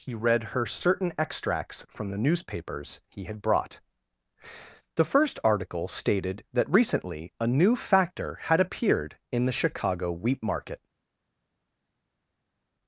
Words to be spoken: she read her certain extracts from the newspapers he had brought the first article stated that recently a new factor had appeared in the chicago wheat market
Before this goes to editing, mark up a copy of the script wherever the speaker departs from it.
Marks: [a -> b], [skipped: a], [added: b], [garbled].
[she -> he] read her certain extracts from the newspapers he had brought the first article stated that recently a new factor had appeared in the chicago wheat market